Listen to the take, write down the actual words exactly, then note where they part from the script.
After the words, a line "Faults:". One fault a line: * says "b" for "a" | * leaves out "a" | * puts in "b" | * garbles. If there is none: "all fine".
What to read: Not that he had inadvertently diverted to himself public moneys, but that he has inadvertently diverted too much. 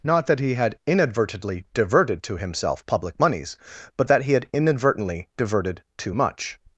Not that he had inadvertently diverted to himself public moneys, but that he had inadvertently diverted too much.
Faults:
* says "had" for "has"